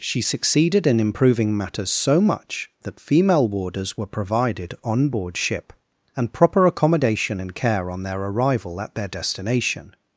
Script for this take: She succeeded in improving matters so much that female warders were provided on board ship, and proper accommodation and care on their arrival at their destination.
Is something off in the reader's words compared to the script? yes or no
no